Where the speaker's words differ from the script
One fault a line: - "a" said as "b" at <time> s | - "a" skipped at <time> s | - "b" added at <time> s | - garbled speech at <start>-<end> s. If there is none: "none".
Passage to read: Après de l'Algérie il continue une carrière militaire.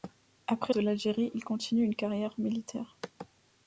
none